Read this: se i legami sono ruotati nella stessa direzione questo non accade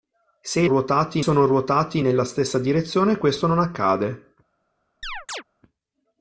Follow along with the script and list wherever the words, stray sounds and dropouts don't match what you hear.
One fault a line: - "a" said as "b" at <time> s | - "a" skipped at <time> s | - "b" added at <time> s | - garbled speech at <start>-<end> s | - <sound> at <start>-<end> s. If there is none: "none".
- "legami" said as "ruotati" at 0.7 s
- chirp at 5.0-5.4 s